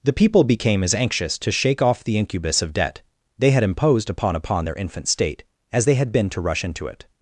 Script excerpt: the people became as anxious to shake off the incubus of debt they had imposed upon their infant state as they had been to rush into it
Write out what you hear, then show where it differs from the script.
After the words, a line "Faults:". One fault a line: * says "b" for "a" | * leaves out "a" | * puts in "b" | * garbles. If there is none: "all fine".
the people became as anxious to shake off the incubus of debt they had imposed upon upon their infant state as they had been to rush into it
Faults:
* puts in "upon"